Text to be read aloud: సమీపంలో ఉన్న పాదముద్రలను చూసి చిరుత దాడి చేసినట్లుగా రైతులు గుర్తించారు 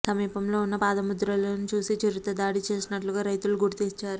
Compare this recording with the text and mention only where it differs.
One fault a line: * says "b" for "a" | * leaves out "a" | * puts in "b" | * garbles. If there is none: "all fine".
all fine